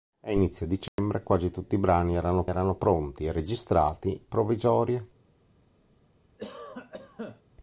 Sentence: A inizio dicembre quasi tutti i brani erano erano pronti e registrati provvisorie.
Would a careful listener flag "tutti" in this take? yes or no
no